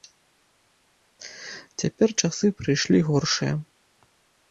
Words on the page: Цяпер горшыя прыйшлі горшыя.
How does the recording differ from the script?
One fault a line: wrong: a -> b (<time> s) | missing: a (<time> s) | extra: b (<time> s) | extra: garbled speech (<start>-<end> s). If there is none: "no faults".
wrong: горшыя -> часы (2.2 s)